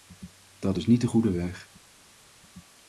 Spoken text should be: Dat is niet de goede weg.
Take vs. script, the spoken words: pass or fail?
pass